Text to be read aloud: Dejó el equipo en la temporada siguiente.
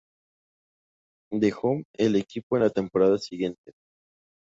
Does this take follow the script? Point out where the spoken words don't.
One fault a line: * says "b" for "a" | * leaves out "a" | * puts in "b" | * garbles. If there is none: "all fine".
all fine